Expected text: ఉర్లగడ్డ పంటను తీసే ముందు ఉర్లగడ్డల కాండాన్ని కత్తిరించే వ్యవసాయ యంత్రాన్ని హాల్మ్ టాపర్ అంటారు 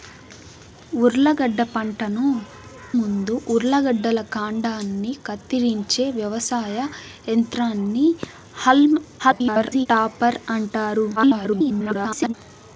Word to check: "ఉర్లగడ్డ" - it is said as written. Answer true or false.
true